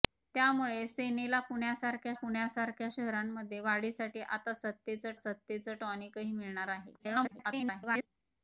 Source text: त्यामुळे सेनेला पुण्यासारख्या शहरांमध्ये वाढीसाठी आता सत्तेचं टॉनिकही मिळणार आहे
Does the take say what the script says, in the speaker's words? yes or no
no